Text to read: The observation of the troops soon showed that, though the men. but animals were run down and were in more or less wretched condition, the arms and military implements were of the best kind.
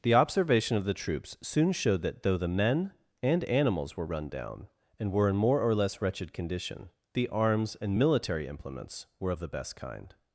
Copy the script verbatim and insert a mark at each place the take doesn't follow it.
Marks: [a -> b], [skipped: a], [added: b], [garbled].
The observation of the troops soon showed that, though the men. [but -> and] animals were run down and were in more or less wretched condition, the arms and military implements were of the best kind.